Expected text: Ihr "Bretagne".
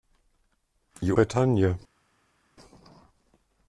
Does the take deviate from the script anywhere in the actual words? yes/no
no